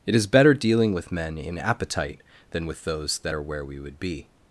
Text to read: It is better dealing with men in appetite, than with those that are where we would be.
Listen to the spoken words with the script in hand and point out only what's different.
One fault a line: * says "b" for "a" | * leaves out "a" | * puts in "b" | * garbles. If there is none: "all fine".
all fine